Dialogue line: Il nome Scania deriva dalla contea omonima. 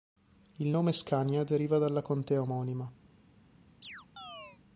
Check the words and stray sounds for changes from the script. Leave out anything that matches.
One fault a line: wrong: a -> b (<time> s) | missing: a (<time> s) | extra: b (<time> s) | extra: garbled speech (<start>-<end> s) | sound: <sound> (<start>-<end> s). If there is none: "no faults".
sound: chirp (3.8-4.6 s)